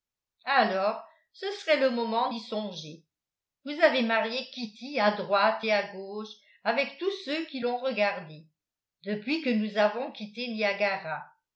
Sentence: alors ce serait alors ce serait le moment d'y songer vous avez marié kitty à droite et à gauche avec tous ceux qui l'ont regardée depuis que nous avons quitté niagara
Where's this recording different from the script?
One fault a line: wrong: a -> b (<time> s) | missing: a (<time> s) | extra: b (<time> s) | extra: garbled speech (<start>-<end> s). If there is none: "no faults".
missing: alors ce serait (1.8 s)